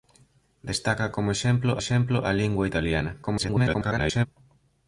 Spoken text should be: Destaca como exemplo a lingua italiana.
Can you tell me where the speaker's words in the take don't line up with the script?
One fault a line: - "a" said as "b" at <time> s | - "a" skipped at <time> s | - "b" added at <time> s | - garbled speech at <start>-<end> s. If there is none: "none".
- "exemplo" added at 1.8 s
- garbled speech at 3.2-4.3 s